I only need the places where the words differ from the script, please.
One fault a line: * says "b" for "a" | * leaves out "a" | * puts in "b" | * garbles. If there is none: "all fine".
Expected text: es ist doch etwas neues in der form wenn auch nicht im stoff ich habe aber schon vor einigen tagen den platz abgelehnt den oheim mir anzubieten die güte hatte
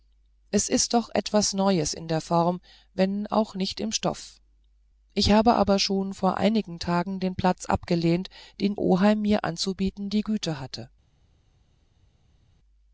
all fine